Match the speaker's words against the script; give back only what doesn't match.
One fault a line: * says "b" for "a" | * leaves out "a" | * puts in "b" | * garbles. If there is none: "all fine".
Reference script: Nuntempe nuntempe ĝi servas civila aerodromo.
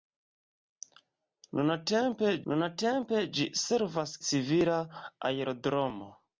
all fine